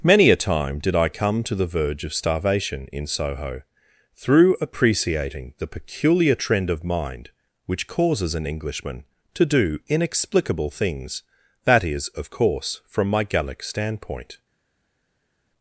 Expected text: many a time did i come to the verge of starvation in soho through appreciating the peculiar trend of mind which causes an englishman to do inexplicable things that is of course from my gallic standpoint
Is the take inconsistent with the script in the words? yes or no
no